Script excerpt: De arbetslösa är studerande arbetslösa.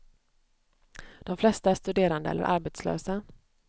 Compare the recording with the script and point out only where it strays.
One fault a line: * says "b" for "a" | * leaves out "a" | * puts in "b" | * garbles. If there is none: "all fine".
* says "flesta" for "arbetslösa"
* puts in "eller"